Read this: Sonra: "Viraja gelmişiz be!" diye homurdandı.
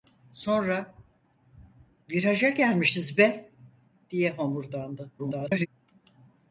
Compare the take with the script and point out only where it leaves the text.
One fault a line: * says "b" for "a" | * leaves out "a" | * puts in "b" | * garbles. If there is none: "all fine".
* garbles